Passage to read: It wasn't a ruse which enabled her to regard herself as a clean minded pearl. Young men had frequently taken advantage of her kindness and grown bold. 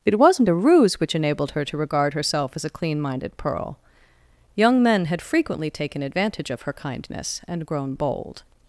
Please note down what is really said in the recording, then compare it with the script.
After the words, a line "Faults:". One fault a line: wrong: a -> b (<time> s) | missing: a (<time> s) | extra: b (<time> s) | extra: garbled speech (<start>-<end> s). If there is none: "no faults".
It wasn't a ruse which enabled her to regard herself as a clean minded pearl. Young men had frequently taken advantage of her kindness and grown bold.
Faults:
no faults